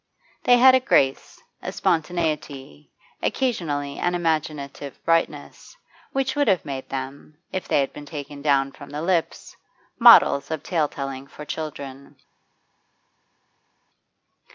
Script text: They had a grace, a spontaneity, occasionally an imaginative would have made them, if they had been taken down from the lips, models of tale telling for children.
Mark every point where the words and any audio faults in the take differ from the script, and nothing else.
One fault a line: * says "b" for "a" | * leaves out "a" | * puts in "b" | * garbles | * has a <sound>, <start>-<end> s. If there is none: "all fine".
* puts in "brightness which"